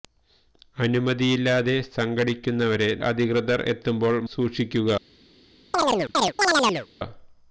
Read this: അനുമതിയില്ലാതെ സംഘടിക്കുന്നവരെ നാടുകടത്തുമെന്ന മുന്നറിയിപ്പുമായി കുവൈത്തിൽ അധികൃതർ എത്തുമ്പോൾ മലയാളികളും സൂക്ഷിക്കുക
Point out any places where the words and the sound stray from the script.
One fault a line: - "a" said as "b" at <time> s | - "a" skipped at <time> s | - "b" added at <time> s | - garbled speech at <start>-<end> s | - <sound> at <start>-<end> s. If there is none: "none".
- "നാടുകടത്തുമെന്ന മുന്നറിയിപ്പുമായി കുവൈത്തിൽ" skipped at 2.9 s
- "മലയാളികളും" skipped at 4.2 s
- chirp at 5.7-6.9 s